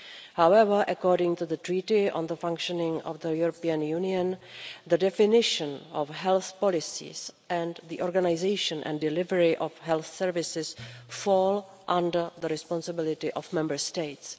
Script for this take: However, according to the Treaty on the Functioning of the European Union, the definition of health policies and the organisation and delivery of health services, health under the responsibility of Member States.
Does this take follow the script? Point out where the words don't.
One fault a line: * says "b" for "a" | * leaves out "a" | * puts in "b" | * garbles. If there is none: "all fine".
* says "fall" for "health"